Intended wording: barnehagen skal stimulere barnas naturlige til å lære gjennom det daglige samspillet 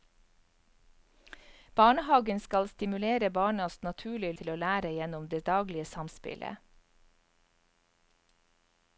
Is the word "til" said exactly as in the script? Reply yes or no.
yes